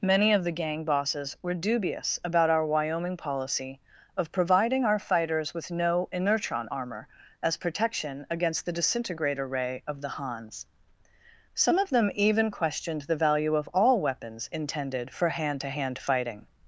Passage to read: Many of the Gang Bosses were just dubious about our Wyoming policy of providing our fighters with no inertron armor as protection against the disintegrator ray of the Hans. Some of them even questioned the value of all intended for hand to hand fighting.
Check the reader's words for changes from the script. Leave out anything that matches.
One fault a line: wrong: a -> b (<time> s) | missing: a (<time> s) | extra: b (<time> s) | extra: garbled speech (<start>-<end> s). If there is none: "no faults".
missing: just (1.5 s)
extra: weapons (14.0 s)